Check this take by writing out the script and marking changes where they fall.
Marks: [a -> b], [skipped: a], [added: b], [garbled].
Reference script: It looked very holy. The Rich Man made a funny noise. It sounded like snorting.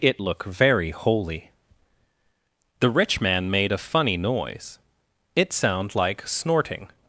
It [looked -> look] very holy. The Rich Man made a funny noise. It [sounded -> sound] like snorting.